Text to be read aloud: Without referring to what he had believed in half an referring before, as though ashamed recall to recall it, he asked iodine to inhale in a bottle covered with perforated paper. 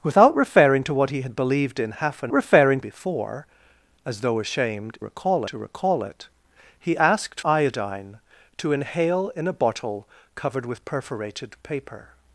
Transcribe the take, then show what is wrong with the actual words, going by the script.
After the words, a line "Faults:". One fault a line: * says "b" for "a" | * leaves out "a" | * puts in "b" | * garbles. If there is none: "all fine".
Without referring to what he had believed in half an referring before, as though ashamed recall to recall it, he asked iodine to inhale in a bottle covered with perforated paper.
Faults:
all fine